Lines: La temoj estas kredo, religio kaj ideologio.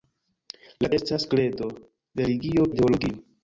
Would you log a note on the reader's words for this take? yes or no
yes